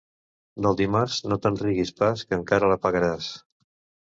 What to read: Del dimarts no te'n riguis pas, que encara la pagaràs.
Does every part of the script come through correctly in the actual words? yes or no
yes